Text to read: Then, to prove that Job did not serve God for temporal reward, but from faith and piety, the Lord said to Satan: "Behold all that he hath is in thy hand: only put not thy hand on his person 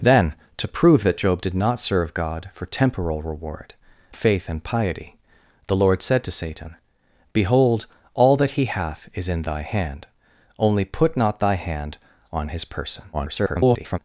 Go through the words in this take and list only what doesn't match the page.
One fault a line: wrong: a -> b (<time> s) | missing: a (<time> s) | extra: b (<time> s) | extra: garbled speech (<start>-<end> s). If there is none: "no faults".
missing: but from (3.8 s)
extra: garbled speech (13.1-14.0 s)